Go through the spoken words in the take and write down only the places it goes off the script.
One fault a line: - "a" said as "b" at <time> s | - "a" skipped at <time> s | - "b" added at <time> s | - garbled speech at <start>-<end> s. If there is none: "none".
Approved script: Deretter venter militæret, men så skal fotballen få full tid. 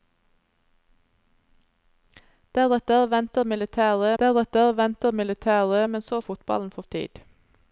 - "deretter venter militæret" added at 4.2 s
- "skal" skipped at 6.2 s
- "full" skipped at 6.8 s